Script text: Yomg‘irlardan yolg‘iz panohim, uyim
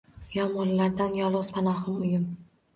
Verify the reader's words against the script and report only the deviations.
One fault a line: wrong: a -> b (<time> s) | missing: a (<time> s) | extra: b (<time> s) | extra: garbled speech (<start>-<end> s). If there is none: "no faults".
no faults